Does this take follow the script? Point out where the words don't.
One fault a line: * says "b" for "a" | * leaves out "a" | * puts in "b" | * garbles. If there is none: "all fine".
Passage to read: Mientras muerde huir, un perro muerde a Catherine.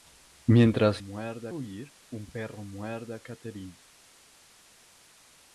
all fine